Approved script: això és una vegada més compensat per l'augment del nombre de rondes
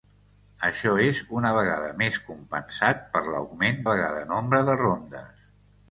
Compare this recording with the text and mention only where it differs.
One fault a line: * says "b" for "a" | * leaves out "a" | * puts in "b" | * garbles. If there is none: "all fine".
* says "vegada" for "del"